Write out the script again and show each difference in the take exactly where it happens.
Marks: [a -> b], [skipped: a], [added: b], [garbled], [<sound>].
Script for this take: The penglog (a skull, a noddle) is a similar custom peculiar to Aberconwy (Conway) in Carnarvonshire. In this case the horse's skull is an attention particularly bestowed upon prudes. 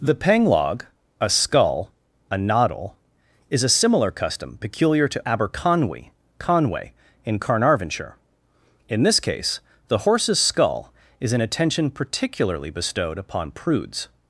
The penglog (a skull, a noddle) is a similar custom peculiar to Aberconwy (Conway) in Carnarvonshire. In this case the horse's skull is an attention particularly bestowed upon prudes.